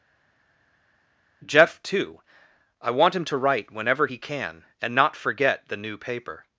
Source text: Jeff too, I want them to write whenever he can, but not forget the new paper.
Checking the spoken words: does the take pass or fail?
fail